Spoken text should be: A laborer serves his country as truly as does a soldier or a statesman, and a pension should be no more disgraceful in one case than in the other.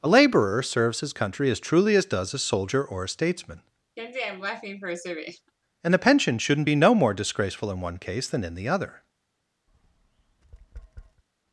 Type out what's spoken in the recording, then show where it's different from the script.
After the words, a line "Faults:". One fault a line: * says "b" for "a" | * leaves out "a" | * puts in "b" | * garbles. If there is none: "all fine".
A laborer serves his country as truly as does a soldier or a statesman, and a pension shouldn't be no more disgraceful in one case than in the other.
Faults:
* says "shouldn't" for "should"